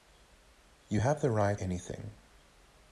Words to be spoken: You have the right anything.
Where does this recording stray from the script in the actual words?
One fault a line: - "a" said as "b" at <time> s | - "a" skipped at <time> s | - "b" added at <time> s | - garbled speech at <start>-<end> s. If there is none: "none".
none